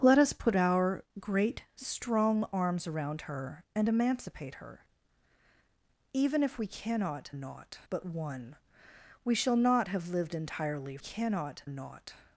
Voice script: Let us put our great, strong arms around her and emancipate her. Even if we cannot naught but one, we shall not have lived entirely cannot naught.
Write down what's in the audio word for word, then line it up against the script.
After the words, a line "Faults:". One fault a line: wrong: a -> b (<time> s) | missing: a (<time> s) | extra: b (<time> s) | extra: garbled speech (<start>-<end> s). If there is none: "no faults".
Let us put our great, strong arms around her and emancipate her. Even if we cannot naught but one, we shall not have lived entirely cannot naught.
Faults:
no faults